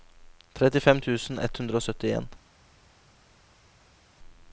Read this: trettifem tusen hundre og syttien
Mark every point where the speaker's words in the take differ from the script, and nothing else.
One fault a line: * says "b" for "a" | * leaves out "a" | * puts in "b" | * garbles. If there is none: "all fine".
* puts in "ett"